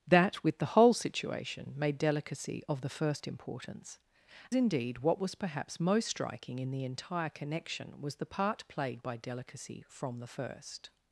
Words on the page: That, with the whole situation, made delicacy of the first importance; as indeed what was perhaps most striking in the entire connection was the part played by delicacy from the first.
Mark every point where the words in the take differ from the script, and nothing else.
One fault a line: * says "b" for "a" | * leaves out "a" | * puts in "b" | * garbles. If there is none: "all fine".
* leaves out "as"